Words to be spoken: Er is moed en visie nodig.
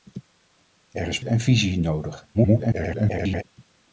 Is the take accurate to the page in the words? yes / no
no